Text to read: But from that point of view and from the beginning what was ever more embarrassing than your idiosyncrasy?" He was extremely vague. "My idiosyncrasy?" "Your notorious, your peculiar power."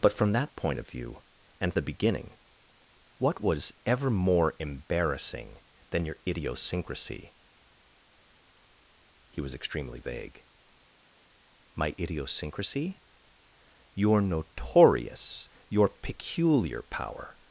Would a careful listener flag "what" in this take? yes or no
no